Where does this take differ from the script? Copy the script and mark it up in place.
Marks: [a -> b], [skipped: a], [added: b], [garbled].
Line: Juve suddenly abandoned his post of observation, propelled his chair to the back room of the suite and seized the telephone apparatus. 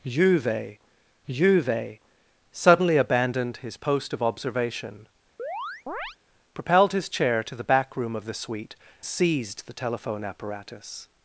Juve [added: juve] suddenly abandoned his post of observation, propelled his chair to the back room of the suite [skipped: and] seized the telephone apparatus.